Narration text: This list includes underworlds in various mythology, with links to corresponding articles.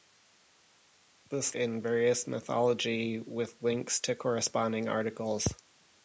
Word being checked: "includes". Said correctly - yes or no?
no